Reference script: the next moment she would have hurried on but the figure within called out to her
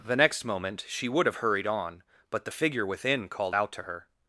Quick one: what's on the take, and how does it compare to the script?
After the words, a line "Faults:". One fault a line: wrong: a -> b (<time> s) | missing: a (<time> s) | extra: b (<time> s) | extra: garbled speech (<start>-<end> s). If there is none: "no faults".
the next moment she would have hurried on but the figure within called out to her
Faults:
no faults